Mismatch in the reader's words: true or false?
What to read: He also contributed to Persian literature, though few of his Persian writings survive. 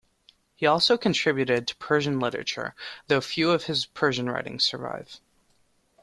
false